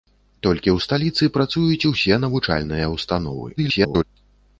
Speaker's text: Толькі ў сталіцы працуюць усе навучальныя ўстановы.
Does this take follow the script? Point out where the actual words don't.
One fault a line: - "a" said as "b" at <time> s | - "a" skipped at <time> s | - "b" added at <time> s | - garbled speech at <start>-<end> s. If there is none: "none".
- garbled speech at 3.6-4.0 s